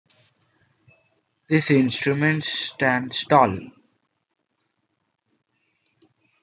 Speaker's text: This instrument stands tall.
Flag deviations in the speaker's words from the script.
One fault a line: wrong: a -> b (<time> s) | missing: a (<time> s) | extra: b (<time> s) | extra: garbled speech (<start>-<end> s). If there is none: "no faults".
no faults